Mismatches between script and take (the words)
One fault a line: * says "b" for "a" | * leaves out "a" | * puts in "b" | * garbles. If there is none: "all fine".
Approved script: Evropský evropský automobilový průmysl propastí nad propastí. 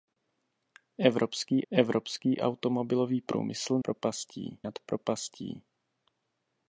all fine